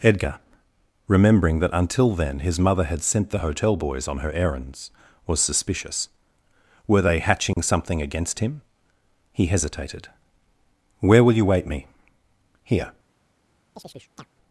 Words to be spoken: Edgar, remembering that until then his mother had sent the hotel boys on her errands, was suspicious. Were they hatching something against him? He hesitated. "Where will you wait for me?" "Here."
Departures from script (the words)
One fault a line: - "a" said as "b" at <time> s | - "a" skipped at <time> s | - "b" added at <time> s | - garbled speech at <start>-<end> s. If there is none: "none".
- "for" skipped at 11.7 s